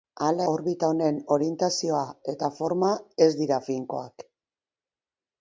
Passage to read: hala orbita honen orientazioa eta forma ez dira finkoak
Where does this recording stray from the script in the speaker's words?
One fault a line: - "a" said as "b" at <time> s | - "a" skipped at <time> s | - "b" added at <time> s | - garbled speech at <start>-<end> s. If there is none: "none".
none